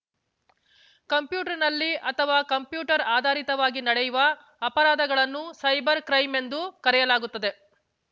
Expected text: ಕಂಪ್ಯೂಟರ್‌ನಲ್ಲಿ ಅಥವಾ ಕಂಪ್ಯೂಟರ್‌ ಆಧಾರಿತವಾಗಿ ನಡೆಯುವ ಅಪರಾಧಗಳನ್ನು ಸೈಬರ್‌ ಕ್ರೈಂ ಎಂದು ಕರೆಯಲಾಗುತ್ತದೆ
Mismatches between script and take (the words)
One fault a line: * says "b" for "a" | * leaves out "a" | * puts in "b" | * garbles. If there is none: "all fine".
all fine